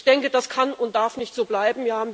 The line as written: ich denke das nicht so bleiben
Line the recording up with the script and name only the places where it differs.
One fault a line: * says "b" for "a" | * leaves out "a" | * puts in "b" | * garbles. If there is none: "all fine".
* puts in "kann und darf"